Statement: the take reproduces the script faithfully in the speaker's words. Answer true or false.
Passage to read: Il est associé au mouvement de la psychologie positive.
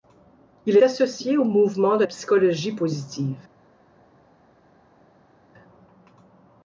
false